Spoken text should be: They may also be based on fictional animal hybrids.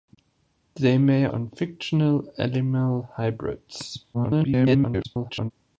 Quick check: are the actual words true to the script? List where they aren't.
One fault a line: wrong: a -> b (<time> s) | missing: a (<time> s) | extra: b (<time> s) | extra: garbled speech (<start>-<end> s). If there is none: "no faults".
missing: also be based (1.3 s)
extra: garbled speech (4.1-5.5 s)